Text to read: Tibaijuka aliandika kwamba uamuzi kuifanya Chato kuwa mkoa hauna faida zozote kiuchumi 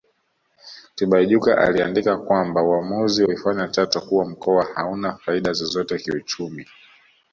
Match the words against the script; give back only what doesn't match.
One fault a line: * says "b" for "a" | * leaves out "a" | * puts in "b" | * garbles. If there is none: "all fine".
all fine